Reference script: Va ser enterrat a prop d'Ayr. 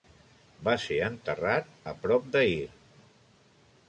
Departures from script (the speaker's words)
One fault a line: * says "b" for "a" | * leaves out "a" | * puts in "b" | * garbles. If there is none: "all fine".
all fine